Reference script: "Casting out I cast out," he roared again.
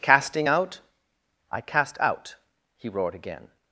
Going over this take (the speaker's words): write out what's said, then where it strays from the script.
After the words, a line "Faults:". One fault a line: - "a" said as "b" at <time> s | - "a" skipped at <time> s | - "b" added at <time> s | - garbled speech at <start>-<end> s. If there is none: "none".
"Casting out I cast out," he roared again.
Faults:
none